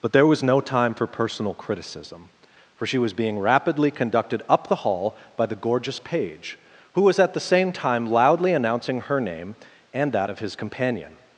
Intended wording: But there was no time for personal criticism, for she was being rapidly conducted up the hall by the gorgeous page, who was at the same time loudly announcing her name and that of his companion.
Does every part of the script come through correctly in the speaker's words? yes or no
yes